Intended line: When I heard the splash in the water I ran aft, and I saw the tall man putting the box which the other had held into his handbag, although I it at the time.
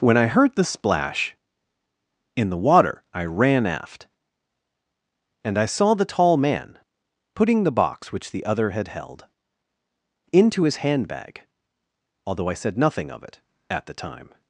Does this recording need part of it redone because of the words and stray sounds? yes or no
yes